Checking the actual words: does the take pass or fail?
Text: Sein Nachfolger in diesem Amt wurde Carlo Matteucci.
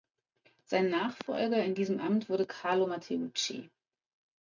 pass